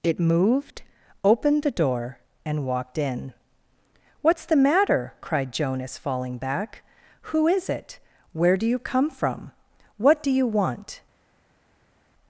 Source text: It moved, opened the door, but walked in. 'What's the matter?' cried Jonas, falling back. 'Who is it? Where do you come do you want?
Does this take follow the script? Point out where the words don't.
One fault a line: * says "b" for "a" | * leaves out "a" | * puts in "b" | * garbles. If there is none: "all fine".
* says "and" for "but"
* puts in "from What"